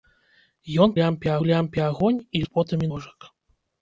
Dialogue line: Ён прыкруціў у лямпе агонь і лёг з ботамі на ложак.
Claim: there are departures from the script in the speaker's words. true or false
true